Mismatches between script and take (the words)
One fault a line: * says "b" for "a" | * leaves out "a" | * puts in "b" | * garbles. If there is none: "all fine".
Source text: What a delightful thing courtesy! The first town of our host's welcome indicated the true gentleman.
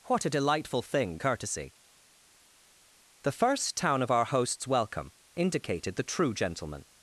all fine